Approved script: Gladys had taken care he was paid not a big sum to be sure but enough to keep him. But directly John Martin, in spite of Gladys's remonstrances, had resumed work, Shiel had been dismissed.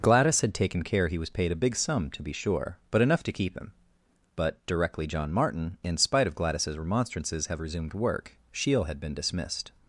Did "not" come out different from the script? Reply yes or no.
yes